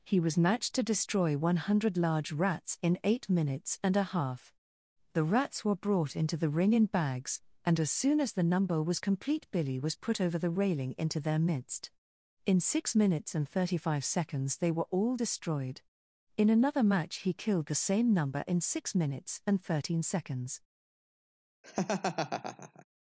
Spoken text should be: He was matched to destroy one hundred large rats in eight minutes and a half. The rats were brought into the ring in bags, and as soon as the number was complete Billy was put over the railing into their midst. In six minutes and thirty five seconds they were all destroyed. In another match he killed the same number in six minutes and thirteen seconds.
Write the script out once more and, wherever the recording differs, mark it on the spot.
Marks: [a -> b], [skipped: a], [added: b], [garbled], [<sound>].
He was matched to destroy one hundred large rats in eight minutes and a half. The rats were brought into the ring in bags, and as soon as the number was complete Billy was put over the railing into their midst. In six minutes and thirty five seconds they were all destroyed. In another match he killed the same number in six minutes and thirteen seconds. [laugh]